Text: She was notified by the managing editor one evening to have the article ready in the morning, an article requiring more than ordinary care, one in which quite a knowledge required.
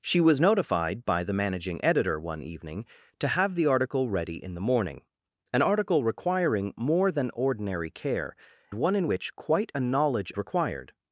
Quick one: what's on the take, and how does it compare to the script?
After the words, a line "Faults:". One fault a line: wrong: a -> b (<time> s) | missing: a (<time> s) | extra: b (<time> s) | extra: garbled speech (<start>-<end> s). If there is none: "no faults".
She was notified by the managing editor one evening to have the article ready in the morning, an article requiring more than ordinary care, one in which quite a knowledge required.
Faults:
no faults